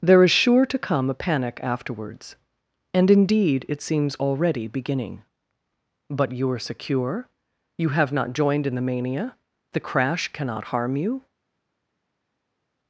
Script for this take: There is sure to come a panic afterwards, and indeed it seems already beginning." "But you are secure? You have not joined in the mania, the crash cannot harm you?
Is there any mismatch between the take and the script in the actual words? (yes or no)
no